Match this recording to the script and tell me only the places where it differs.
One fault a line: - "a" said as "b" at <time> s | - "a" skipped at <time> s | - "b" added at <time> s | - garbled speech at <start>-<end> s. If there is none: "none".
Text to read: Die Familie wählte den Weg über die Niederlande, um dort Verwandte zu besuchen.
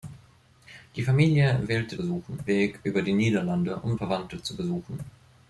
- "den" said as "besuchen" at 1.9 s
- "dort" skipped at 4.0 s